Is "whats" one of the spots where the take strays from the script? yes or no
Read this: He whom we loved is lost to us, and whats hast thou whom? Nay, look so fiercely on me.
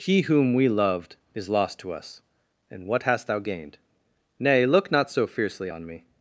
yes